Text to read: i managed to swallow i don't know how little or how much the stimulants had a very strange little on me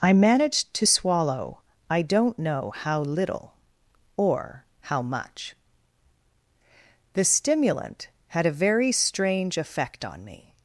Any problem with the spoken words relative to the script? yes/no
yes